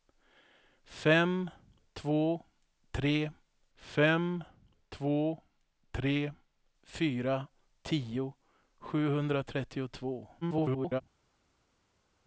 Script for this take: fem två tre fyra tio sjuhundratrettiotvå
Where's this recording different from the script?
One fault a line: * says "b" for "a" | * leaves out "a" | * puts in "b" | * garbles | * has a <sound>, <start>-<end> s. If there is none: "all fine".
* puts in "fem två tre"
* garbles